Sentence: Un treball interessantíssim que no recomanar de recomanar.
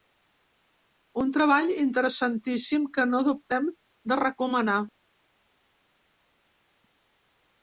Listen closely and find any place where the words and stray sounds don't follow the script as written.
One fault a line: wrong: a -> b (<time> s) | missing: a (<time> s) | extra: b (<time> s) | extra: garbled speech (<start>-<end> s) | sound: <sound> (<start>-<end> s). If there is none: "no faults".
wrong: recomanar -> dubtem (3.3 s)